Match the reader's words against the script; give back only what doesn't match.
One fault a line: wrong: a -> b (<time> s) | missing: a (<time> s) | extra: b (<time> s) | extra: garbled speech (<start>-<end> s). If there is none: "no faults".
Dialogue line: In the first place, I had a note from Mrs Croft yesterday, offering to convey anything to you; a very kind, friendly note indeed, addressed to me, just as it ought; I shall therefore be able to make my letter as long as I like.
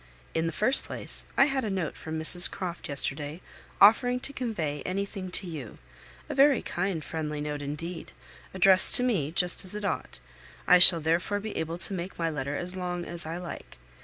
no faults